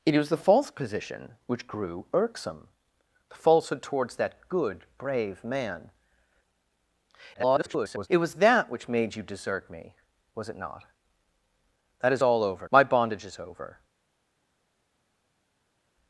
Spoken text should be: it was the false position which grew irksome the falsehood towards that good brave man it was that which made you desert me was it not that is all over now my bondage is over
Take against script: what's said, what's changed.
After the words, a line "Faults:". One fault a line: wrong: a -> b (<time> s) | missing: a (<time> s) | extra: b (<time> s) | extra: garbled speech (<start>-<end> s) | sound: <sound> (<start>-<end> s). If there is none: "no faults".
it was the false position which grew irksome the falsehood towards that good brave man [garbled] it was that which made you desert me was it not that is all over my bondage is over
Faults:
extra: garbled speech (7.3-8.1 s)
missing: now (12.7 s)